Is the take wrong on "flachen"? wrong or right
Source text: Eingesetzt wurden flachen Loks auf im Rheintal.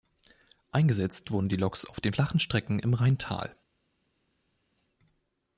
wrong